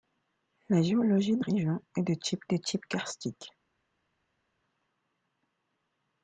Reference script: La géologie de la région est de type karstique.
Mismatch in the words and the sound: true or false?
true